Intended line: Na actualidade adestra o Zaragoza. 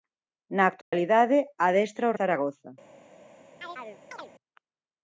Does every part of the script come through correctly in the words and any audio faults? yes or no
no